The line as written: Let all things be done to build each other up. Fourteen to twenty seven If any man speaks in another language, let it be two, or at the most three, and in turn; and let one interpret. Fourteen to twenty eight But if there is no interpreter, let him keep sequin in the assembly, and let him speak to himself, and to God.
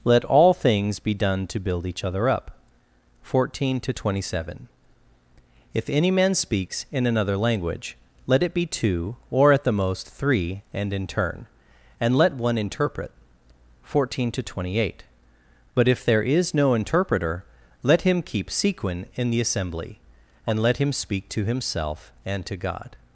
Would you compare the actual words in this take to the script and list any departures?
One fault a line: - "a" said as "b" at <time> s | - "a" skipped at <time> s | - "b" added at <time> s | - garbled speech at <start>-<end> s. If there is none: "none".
none